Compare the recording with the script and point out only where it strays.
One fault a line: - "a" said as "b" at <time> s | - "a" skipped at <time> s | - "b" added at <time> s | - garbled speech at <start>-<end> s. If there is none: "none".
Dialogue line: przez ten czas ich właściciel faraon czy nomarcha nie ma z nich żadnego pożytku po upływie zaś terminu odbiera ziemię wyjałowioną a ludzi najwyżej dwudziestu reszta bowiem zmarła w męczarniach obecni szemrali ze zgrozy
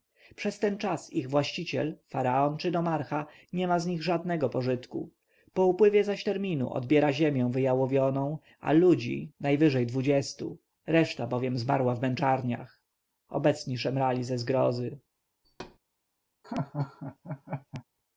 none